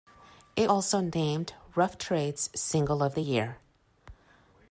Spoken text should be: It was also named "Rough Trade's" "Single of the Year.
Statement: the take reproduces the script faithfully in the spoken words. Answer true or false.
false